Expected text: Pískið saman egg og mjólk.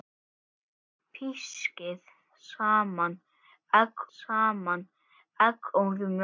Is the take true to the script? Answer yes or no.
no